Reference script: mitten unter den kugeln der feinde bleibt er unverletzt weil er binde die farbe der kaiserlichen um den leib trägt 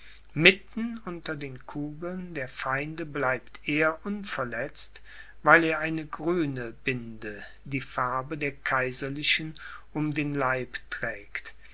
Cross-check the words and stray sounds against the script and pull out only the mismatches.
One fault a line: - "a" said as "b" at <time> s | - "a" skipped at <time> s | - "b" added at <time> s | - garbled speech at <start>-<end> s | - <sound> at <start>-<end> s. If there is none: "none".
- "eine grüne" added at 5.8 s